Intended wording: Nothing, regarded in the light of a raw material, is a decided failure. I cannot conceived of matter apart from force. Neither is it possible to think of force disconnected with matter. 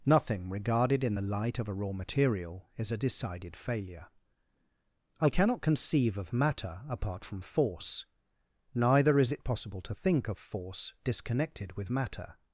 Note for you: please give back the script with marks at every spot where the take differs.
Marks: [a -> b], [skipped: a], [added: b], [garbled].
Nothing, regarded in the light of a raw material, is a decided failure. I cannot [conceived -> conceive] of matter apart from force. Neither is it possible to think of force disconnected with matter.